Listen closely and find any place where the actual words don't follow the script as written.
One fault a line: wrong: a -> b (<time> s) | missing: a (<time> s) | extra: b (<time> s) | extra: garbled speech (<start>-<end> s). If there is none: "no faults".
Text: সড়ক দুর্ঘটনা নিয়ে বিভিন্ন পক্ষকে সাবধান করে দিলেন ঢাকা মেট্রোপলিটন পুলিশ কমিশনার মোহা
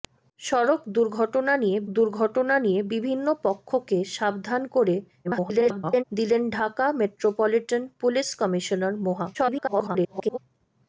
extra: দুর্ঘটনা নিয়ে (2.0 s)
extra: garbled speech (5.2-6.0 s)
extra: garbled speech (9.3-10.4 s)